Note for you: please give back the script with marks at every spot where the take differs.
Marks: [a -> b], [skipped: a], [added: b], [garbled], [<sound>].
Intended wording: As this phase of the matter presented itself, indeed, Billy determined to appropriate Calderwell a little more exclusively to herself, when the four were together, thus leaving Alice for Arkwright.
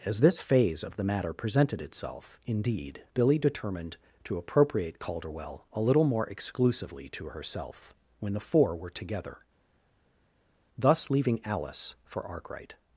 As this phase of the matter presented itself, indeed, Billy determined to appropriate Calderwell a little more exclusively to herself, when the four were together, thus leaving Alice for Arkwright.